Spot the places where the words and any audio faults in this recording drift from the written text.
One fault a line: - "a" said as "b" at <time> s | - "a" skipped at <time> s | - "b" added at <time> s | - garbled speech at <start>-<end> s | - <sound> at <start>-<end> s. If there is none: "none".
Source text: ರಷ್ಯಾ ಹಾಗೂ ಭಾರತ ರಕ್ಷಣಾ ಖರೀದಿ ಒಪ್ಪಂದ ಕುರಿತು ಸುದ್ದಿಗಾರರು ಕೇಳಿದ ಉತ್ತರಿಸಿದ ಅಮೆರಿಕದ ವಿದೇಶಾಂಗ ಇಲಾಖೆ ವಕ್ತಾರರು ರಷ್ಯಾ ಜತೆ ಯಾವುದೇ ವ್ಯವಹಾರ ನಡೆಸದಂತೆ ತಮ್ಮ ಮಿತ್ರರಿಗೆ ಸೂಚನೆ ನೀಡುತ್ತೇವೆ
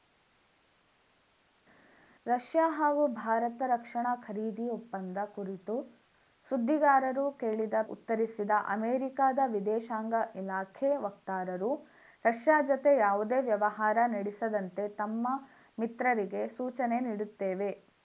none